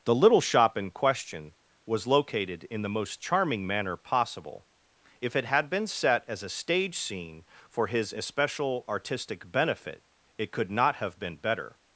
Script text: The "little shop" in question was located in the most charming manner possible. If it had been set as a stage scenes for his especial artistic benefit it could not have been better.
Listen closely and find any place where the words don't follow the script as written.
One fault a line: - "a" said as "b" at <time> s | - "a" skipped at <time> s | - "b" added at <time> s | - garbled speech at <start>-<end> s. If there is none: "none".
- "scenes" said as "scene" at 7.0 s